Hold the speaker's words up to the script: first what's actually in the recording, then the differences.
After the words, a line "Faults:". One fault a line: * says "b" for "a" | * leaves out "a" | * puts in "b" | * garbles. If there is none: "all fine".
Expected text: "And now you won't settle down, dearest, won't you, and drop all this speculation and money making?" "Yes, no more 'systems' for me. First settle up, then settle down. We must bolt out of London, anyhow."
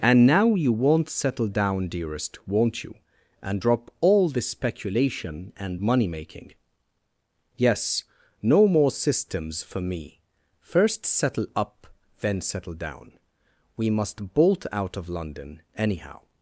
"And now you won't settle down, dearest, won't you, and drop all this speculation and money making?" "Yes, no more 'systems' for me. First settle up, then settle down. We must bolt out of London, anyhow."
Faults:
all fine